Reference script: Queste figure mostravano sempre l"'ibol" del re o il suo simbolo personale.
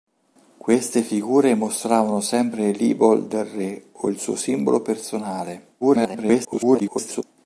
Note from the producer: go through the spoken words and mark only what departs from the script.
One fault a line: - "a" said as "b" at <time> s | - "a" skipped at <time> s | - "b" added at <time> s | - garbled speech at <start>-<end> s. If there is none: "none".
- garbled speech at 5.8-7.2 s